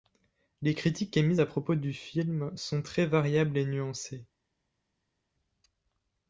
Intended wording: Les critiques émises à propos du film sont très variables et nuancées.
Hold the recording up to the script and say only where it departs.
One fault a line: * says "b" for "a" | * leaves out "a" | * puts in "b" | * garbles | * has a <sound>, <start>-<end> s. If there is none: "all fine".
all fine